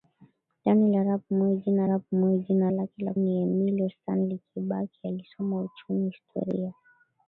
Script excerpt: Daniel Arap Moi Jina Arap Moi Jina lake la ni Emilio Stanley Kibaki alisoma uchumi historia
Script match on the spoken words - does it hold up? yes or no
yes